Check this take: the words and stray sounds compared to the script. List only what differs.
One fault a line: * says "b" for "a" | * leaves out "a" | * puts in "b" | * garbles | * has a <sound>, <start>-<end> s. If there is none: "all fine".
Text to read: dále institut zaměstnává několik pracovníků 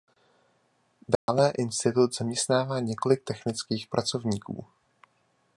* has a dropout, 1.2-1.3 s
* puts in "technických"